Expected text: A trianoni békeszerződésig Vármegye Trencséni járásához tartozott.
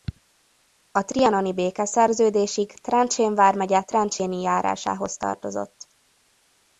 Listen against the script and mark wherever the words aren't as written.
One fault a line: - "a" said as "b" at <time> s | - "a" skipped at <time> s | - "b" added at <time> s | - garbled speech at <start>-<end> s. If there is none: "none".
- "Trencsén" added at 2.7 s